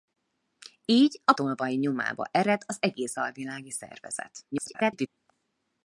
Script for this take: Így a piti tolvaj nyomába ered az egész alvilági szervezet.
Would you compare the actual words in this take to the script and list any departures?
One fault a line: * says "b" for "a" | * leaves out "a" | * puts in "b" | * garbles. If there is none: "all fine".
* leaves out "piti"
* garbles